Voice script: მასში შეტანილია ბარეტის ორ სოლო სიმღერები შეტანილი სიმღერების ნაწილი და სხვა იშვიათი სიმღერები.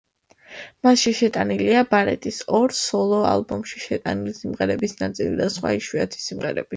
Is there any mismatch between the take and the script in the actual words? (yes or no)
yes